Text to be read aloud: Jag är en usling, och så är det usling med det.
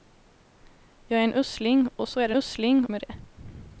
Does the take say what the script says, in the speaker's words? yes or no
yes